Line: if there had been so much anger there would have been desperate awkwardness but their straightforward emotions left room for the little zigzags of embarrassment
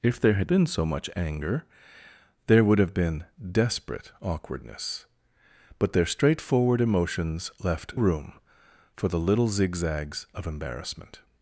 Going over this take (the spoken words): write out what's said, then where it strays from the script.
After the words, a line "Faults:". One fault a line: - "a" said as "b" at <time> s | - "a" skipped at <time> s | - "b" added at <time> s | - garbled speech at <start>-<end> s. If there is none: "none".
if there had been so much anger there would have been desperate awkwardness but their straightforward emotions left room for the little zigzags of embarrassment
Faults:
none